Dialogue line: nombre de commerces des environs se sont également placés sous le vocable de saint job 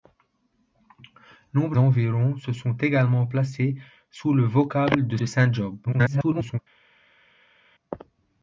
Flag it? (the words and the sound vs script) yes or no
yes